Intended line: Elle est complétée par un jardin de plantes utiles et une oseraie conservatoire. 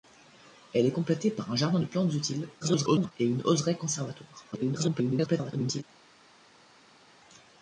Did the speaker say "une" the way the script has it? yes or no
yes